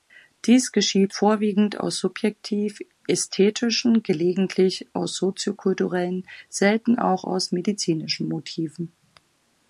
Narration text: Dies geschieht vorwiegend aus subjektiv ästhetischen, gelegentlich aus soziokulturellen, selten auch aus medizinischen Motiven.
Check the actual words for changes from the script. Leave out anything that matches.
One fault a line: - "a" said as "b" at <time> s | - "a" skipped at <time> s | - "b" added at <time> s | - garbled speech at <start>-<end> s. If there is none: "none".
none